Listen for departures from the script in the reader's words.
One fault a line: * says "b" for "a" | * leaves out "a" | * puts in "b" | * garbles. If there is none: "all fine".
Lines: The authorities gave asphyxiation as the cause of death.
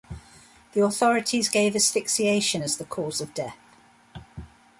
all fine